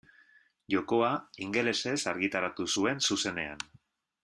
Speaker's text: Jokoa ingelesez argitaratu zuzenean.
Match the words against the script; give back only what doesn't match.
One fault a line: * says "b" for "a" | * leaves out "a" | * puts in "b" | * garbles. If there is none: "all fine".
* puts in "zuen"